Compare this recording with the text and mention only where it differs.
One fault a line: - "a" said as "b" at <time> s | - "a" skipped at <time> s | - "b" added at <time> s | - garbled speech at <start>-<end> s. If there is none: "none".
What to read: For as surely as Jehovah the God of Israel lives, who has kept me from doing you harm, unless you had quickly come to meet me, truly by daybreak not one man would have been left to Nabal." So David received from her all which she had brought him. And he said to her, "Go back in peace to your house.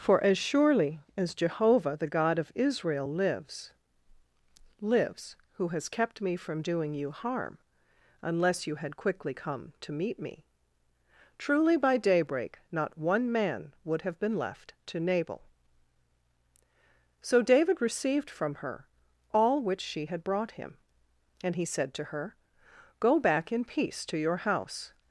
- "lives" added at 4.8 s